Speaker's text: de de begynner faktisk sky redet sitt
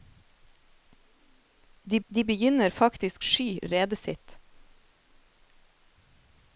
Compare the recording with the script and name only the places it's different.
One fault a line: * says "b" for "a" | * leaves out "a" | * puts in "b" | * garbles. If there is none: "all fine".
all fine